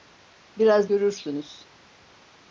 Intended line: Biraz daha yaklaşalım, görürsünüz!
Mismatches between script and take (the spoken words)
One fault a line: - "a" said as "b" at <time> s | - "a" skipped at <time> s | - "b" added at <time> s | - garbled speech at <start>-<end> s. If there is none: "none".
- "daha yaklaşalım" skipped at 0.9 s